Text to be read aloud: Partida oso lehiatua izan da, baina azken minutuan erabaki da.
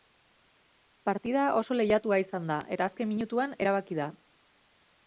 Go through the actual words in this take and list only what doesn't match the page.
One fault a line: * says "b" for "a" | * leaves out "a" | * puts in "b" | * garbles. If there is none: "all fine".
* says "eta" for "baina"